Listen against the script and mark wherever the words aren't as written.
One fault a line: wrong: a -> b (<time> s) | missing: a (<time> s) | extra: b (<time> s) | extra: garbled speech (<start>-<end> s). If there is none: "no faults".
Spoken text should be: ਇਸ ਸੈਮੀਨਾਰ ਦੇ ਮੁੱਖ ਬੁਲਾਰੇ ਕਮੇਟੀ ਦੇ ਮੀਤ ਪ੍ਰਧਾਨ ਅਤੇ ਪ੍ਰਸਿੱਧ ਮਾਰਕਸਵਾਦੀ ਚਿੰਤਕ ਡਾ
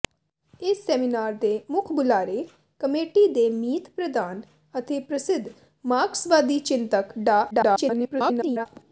extra: garbled speech (7.5-8.7 s)